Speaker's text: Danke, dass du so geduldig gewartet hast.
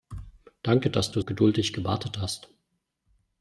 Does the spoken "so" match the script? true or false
false